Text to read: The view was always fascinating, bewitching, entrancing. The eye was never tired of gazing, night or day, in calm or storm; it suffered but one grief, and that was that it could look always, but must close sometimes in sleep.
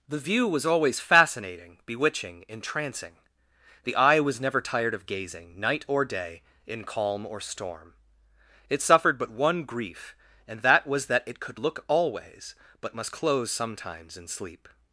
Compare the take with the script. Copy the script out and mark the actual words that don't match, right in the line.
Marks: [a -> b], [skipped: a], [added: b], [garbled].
The view was always fascinating, bewitching, entrancing. The eye was never tired of gazing, night or day, in calm or storm; it suffered but one grief, and that was that it could look always, but must close sometimes in sleep.